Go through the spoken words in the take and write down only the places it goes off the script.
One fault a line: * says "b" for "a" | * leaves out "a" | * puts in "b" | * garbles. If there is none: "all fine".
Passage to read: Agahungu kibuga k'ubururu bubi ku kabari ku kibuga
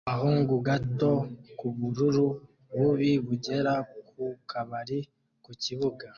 * says "gato" for "kibuga"
* puts in "bugera"